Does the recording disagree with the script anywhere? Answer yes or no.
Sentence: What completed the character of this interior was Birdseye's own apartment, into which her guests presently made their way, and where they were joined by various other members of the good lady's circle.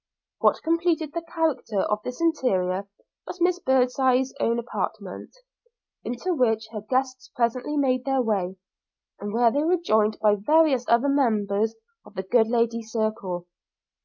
yes